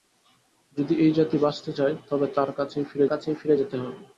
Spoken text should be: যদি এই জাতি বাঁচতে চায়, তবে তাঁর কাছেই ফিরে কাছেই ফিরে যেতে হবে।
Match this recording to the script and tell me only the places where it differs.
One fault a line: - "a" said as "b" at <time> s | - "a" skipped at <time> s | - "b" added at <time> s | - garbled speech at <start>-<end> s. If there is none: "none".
none